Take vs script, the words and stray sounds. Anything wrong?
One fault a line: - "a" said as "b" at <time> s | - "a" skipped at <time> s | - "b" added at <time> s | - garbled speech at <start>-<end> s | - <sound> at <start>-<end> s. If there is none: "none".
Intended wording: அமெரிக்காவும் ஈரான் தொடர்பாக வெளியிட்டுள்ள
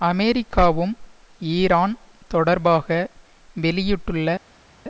none